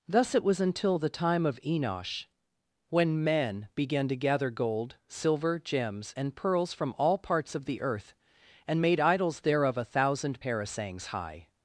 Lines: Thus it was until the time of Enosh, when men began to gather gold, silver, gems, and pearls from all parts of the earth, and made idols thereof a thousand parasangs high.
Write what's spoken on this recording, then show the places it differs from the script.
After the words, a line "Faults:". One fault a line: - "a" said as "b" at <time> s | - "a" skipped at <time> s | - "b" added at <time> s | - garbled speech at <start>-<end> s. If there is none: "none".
Thus it was until the time of Enosh, when men began to gather gold, silver, gems, and pearls from all parts of the earth, and made idols thereof a thousand parasangs high.
Faults:
none